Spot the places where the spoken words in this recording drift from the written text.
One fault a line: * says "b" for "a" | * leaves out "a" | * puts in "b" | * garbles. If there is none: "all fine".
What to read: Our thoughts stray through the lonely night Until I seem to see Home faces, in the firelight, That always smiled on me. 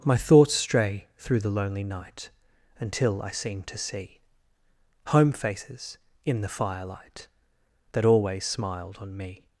* says "My" for "Our"